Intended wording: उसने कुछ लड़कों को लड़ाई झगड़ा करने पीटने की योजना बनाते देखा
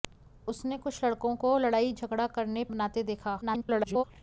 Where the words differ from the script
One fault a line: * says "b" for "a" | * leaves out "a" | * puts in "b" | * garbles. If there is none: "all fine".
* leaves out "पीटने की योजना"
* garbles